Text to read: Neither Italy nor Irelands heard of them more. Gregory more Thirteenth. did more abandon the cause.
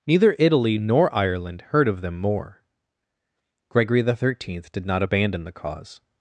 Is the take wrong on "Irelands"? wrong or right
wrong